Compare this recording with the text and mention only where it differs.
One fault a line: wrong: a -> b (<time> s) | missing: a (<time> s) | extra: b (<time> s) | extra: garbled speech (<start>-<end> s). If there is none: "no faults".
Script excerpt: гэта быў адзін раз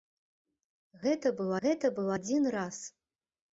extra: гэта быў (1.6 s)